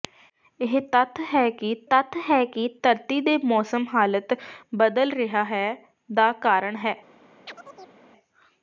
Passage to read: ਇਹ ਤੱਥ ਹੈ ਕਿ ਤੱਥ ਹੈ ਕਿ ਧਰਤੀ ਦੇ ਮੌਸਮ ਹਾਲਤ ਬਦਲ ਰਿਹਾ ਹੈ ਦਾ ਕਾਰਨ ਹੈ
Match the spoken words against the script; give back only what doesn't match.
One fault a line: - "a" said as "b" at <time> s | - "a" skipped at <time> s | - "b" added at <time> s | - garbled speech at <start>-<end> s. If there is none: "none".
none